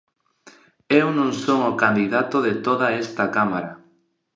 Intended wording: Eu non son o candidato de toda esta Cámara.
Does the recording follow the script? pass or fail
pass